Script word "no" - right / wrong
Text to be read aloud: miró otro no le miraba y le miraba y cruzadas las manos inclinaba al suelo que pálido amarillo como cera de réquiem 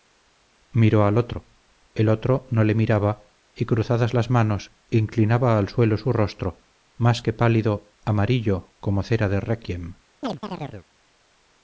wrong